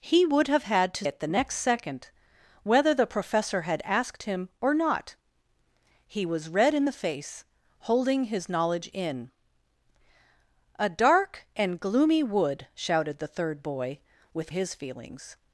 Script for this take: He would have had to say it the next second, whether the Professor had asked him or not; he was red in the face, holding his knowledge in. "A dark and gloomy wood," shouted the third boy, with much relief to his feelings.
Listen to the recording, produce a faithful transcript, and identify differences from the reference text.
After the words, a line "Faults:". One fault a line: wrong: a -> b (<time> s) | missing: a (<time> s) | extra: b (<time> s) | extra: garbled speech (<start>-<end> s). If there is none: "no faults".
He would have had to it the next second, whether the Professor had asked him or not; he was red in the face, holding his knowledge in. "A dark and gloomy wood," shouted the third boy, with his feelings.
Faults:
missing: say (1.1 s)
missing: much relief to (14.5 s)